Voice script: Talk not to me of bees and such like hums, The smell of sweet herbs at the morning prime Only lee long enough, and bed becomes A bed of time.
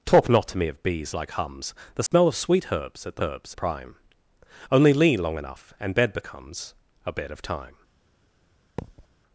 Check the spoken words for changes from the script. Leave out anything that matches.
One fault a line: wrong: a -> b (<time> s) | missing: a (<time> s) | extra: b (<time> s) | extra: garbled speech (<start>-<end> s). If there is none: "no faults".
missing: and such (1.1 s)
wrong: morning -> herbs (3.2 s)